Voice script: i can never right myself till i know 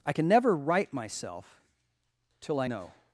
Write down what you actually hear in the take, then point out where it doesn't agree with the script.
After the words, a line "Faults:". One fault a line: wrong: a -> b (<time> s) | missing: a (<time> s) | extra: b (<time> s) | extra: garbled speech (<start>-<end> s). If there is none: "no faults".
i can never right myself till i know
Faults:
no faults